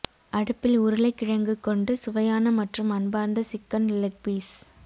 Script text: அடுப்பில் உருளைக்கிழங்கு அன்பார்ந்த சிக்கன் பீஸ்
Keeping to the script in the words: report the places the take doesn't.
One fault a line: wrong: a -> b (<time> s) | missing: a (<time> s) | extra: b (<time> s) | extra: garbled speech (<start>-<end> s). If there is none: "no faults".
extra: கொண்டு சுவையான மற்றும் (1.6 s)
extra: லெக் (4.0 s)